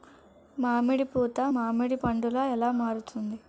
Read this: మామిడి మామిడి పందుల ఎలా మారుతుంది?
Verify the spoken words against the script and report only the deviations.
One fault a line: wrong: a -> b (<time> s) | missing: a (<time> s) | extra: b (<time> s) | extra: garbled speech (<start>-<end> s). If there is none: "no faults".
extra: పూత (1.1 s)